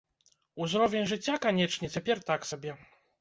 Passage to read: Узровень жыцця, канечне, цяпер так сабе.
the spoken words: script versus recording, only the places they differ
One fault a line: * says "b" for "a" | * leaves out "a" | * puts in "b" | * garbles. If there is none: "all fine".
all fine